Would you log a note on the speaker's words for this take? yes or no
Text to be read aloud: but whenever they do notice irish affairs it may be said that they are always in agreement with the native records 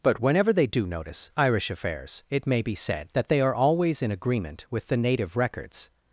no